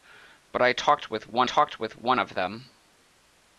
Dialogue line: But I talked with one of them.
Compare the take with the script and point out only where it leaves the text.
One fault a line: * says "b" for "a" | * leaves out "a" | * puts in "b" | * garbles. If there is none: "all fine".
* puts in "talked with one"